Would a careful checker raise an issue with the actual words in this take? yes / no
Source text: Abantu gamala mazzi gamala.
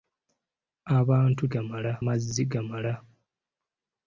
no